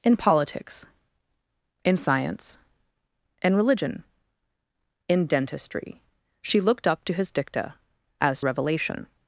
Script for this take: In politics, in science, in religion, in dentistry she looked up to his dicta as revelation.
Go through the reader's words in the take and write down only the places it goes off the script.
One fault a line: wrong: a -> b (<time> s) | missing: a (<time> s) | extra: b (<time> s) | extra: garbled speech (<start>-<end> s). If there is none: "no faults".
no faults